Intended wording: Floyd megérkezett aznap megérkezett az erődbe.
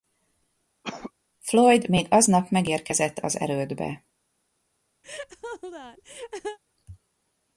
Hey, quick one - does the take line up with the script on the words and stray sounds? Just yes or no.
no